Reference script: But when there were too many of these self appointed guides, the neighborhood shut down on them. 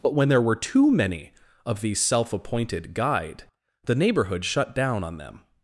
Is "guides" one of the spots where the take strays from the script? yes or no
yes